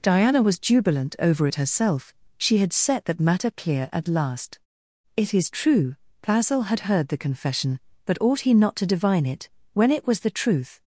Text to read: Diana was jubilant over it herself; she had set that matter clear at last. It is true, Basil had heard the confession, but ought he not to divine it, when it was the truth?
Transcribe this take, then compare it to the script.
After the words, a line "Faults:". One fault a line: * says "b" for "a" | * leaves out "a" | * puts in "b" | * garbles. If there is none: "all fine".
Diana was jubilant over it herself; she had set that matter clear at last. It is true, Basil had heard the confession, but ought he not to divine it, when it was the truth?
Faults:
all fine